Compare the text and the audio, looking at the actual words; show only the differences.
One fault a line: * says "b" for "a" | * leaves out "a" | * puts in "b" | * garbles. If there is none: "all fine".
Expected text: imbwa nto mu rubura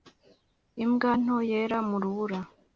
* puts in "yera"